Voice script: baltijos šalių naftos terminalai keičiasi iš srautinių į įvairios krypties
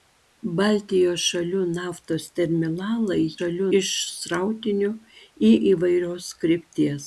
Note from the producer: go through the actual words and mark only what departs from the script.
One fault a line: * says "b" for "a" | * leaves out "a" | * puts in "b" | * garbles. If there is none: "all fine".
* says "šalių" for "keičiasi"